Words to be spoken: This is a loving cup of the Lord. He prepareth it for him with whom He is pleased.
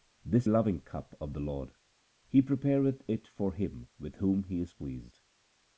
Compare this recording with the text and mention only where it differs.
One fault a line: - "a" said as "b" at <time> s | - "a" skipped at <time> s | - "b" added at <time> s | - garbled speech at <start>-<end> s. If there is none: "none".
- "is a" skipped at 0.5 s